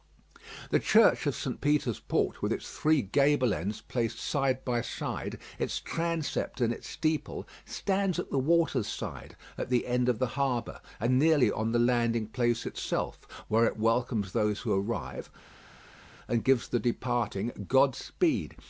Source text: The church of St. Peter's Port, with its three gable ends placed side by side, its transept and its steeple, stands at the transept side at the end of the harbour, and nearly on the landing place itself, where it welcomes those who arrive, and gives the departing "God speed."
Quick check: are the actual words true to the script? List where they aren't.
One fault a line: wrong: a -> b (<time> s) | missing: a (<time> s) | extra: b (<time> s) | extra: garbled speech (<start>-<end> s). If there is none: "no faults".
wrong: transept -> water's (8.4 s)